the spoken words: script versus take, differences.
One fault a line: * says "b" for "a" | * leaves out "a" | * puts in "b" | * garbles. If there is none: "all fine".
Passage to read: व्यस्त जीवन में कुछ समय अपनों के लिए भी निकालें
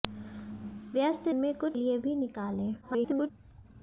* leaves out "जीवन"
* leaves out "समय अपनों के"
* garbles